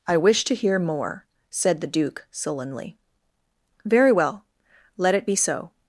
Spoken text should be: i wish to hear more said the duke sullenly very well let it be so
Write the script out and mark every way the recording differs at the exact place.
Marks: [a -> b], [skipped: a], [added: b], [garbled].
i wish to hear more said the duke sullenly very well let it be so